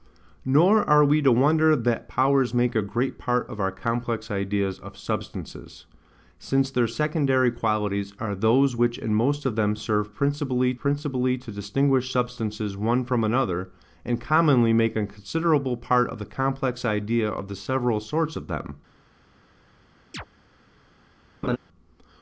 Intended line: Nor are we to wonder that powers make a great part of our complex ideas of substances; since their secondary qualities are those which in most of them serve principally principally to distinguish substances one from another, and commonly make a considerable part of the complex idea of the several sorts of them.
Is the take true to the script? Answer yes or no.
yes